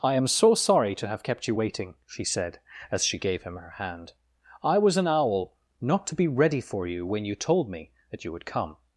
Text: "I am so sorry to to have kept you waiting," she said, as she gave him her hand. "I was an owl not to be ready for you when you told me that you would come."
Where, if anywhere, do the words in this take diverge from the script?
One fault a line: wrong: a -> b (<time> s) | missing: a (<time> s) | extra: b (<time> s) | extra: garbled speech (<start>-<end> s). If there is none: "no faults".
missing: to (1.1 s)